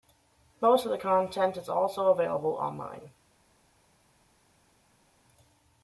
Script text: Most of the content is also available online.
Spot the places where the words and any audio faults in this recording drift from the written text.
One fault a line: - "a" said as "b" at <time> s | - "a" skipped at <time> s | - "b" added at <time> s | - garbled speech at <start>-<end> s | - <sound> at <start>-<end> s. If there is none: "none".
none